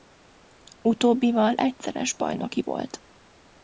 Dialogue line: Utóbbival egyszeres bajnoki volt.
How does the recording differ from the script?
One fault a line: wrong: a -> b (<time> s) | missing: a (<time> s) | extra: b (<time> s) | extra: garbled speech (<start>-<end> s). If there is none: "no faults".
no faults